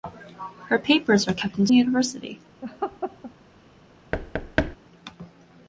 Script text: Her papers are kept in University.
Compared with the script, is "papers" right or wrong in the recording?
right